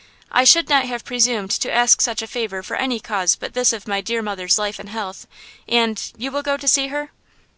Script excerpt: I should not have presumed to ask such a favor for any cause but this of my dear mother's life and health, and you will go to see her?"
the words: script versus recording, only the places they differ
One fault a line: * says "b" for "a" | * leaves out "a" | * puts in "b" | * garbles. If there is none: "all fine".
all fine